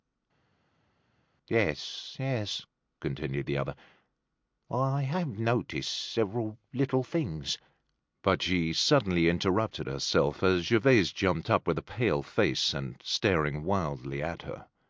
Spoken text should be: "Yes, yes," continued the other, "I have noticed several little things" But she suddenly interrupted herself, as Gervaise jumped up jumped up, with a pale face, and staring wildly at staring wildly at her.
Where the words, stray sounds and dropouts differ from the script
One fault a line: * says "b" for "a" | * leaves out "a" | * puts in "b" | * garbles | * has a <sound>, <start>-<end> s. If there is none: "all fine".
* leaves out "jumped up"
* leaves out "staring wildly at"